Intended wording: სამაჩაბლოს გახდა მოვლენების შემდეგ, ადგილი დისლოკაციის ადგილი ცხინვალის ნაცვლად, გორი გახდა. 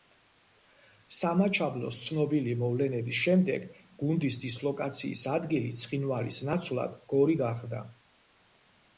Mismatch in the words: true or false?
true